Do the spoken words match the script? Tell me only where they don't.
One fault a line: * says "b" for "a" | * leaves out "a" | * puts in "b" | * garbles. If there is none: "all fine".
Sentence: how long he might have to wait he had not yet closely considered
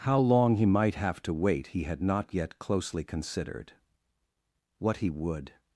* puts in "what he would"